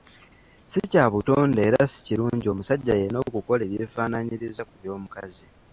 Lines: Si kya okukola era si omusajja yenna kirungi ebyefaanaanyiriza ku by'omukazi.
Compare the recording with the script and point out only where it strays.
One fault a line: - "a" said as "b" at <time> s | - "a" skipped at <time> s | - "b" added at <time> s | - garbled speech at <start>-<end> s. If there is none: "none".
- "okukola" said as "butonde" at 1.1 s
- "kirungi" added at 2.1 s
- "kirungi" said as "okukola" at 3.3 s